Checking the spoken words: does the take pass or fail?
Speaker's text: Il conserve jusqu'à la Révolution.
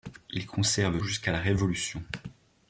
pass